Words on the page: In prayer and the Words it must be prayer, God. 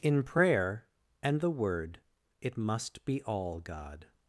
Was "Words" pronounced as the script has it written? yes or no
no